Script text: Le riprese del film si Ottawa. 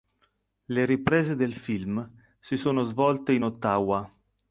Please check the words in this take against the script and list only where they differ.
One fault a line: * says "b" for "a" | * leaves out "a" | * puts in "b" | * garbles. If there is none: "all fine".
* puts in "sono svolte in"